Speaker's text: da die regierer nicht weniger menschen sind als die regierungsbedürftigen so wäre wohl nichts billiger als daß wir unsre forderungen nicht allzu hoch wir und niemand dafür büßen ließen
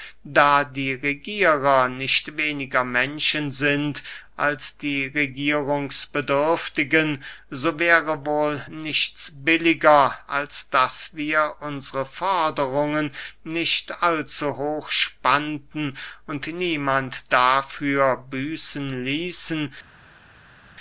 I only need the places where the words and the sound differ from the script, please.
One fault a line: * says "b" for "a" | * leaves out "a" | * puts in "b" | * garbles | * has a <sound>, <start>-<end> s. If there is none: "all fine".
* says "spannten" for "wir"